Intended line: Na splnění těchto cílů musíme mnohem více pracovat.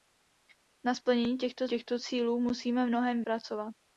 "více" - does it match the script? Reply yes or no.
no